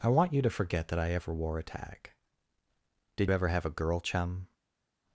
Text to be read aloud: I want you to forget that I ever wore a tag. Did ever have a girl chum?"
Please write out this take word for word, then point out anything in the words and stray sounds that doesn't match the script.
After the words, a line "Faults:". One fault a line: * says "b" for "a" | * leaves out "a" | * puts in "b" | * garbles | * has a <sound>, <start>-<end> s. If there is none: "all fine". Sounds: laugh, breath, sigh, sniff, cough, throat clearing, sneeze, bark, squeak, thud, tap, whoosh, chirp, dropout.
I want you to forget that I ever wore a tag. Did ever have a girl chum?"
Faults:
all fine